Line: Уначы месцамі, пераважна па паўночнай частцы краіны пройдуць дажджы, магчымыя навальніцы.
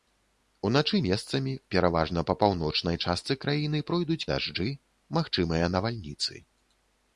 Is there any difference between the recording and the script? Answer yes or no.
no